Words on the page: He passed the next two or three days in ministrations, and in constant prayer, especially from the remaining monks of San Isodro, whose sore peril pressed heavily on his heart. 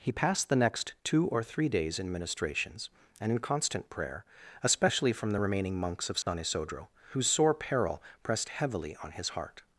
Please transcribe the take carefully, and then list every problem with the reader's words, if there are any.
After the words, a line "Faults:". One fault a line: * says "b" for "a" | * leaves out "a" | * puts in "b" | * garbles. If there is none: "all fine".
He passed the next two or three days in ministrations, and in constant prayer, especially from the remaining monks of San Isodro, whose sore peril pressed heavily on his heart.
Faults:
all fine